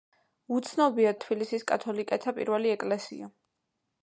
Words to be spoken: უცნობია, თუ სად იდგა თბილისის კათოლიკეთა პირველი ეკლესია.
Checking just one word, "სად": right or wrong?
wrong